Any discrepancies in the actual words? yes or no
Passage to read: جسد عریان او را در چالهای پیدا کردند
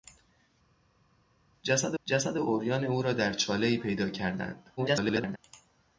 yes